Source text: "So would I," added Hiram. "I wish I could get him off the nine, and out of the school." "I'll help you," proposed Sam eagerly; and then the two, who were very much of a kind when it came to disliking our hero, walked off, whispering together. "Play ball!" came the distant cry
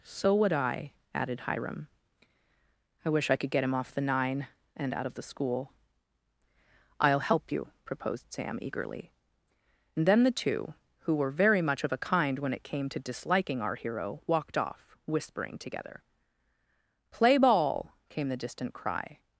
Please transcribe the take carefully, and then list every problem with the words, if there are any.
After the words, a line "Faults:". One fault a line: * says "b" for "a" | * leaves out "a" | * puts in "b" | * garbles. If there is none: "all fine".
"So would I," added Hiram. "I wish I could get him off the nine, and out of the school." "I'll help you," proposed Sam eagerly; and then the two, who were very much of a kind when it came to disliking our hero, walked off, whispering together. "Play ball!" came the distant cry
Faults:
all fine